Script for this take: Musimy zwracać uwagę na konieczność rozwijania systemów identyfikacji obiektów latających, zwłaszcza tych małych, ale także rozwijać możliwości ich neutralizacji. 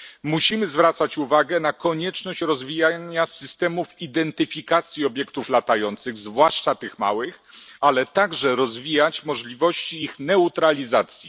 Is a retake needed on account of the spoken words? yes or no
no